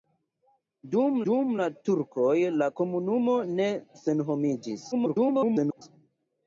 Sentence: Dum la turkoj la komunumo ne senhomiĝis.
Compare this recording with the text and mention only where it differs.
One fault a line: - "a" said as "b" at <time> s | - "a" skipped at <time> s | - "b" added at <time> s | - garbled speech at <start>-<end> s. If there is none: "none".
- "dum" added at 1.3 s
- garbled speech at 4.9-5.8 s